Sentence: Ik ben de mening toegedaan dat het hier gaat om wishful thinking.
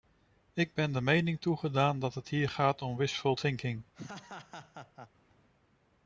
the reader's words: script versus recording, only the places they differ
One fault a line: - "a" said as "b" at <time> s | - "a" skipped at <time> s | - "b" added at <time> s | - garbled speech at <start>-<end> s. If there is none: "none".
none